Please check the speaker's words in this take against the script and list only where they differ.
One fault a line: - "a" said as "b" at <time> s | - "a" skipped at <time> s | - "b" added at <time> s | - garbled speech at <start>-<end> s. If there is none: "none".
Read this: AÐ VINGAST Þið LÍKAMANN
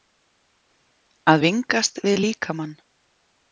- "Þið" said as "VIÐ" at 2.0 s